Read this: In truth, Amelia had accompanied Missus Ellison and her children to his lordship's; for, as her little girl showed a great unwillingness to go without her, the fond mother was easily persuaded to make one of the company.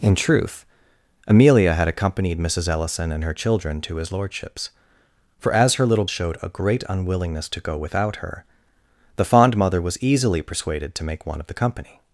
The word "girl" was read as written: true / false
false